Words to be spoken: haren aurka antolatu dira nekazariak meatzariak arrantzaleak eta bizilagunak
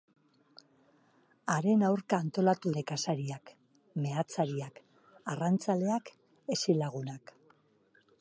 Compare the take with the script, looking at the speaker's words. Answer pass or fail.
fail